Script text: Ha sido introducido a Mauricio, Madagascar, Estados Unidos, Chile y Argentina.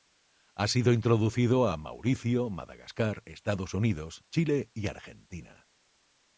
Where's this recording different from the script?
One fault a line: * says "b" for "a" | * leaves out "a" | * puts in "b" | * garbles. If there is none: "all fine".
all fine